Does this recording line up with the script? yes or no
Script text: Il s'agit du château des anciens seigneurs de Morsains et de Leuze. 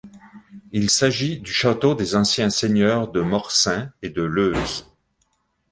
yes